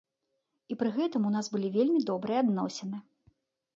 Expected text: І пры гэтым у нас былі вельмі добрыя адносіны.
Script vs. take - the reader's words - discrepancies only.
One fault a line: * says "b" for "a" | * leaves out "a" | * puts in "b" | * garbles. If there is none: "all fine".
all fine